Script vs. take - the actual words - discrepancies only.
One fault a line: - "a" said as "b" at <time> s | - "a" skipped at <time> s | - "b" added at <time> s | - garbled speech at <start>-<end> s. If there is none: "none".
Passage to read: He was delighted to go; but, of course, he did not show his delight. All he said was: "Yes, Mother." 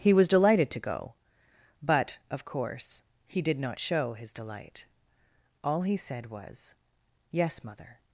none